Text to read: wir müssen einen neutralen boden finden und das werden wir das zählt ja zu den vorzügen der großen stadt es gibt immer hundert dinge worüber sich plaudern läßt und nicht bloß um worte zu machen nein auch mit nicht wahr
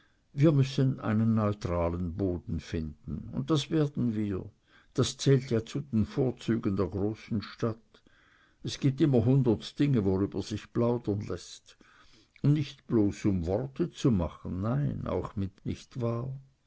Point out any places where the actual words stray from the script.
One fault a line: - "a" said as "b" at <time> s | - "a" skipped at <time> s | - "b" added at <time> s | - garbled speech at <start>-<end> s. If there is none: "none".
none